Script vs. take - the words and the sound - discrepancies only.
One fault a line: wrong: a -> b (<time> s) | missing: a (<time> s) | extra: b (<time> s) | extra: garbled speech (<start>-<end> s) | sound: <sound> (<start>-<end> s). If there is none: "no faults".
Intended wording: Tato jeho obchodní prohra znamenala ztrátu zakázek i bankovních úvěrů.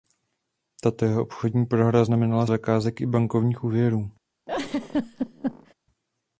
missing: ztrátu (2.5 s)
sound: laugh (4.5-5.7 s)